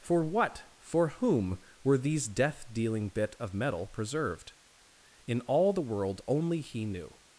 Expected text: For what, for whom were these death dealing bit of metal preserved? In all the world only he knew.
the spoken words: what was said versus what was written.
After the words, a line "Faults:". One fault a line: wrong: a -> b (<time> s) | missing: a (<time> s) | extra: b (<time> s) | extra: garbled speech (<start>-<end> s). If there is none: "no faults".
For what, for whom were these death dealing bit of metal preserved? In all the world only he knew.
Faults:
no faults